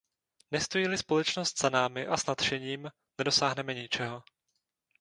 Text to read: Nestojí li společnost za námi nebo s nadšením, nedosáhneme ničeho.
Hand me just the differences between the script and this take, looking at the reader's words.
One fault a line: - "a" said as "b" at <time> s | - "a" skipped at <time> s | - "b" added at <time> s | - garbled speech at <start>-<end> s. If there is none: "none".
- "nebo" said as "a" at 2.1 s